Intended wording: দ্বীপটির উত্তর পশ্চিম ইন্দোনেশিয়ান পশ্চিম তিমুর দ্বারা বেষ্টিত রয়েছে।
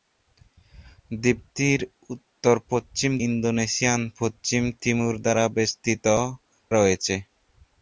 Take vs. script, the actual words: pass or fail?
pass